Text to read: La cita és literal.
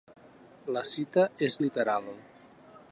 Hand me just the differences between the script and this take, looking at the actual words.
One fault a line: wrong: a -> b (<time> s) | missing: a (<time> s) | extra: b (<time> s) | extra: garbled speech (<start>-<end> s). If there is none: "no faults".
no faults